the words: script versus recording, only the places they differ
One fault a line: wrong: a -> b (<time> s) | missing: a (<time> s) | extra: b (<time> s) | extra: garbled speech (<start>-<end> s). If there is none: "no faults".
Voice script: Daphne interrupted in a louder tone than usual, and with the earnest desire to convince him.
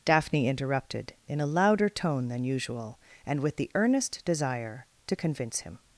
no faults